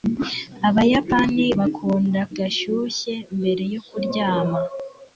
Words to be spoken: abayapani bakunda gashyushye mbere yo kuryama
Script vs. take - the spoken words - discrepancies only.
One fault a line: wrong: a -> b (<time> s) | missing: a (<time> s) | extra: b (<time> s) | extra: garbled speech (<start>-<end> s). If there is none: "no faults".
no faults